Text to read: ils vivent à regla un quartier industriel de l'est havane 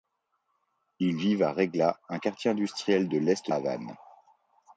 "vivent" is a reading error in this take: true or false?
false